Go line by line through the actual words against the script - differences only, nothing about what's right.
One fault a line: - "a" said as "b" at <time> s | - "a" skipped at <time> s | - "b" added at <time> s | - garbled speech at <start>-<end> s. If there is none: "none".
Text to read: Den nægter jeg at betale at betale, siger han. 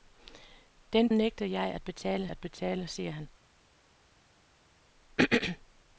none